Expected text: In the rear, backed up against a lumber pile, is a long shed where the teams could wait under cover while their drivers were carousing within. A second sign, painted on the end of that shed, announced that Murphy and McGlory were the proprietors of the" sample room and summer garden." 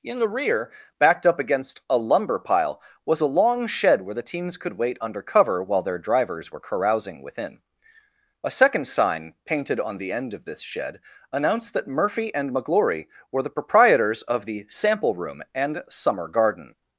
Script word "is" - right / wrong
wrong